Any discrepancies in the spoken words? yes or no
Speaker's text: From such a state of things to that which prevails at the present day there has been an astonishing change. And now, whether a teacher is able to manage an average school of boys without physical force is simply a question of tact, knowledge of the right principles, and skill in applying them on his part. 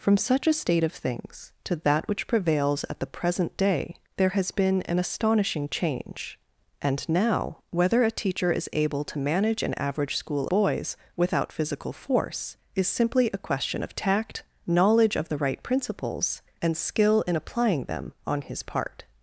yes